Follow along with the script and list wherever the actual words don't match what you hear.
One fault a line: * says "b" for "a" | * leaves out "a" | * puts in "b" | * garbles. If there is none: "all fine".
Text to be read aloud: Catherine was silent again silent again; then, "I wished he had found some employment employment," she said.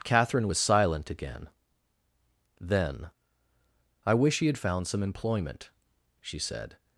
* leaves out "silent again"
* says "wish" for "wished"
* leaves out "employment"